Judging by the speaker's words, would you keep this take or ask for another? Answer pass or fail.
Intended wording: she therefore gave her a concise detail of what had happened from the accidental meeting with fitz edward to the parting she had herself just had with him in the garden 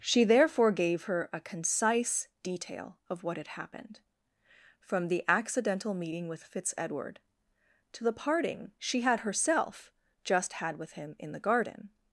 pass